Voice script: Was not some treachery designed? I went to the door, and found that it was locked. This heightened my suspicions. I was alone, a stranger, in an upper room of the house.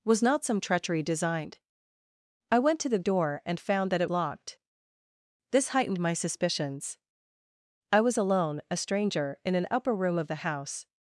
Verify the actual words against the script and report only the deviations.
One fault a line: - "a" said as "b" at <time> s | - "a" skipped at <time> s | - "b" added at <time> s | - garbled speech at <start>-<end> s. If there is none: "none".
- "was" skipped at 4.1 s